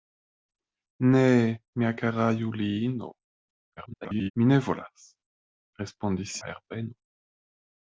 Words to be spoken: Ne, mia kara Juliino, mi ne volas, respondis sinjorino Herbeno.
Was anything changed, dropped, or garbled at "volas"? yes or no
no